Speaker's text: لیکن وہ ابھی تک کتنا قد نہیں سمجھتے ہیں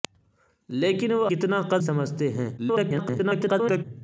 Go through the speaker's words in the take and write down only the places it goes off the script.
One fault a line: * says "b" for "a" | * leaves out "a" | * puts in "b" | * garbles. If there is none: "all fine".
* leaves out "ابھی تک"
* leaves out "نہیں"
* garbles